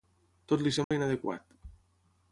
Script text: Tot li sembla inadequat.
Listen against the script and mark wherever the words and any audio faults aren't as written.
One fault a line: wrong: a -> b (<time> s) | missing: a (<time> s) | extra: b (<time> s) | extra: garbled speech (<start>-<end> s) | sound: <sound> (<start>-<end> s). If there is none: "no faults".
sound: dropout (0.8-0.9 s)